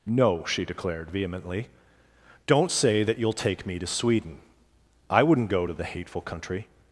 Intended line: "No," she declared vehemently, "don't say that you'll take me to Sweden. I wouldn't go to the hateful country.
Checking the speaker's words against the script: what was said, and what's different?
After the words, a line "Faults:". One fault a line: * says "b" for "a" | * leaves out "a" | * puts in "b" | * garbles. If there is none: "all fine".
"No," she declared vehemently, "don't say that you'll take me to Sweden. I wouldn't go to the hateful country.
Faults:
all fine